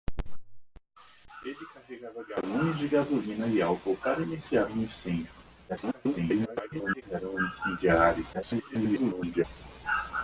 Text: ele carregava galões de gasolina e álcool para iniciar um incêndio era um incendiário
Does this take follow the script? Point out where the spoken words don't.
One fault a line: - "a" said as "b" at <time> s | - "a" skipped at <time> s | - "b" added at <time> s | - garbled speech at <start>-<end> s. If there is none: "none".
- garbled speech at 5.7-7.0 s
- garbled speech at 8.3-9.4 s